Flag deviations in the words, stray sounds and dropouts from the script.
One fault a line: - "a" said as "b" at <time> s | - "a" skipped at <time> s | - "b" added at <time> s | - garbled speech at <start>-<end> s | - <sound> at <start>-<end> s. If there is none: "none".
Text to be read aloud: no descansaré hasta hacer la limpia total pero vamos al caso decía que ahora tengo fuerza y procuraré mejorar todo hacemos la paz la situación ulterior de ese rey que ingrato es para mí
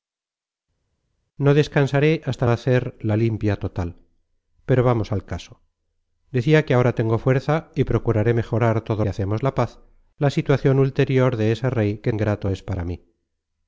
none